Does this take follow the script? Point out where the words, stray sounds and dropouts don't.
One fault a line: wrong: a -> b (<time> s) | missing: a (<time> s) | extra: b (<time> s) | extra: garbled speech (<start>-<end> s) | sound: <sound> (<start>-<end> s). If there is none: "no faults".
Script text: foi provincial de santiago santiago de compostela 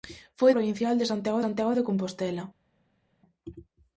no faults